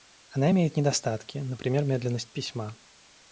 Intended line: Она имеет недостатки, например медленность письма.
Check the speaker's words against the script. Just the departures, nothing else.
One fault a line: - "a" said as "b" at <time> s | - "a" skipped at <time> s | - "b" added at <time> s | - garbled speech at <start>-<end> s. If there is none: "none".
none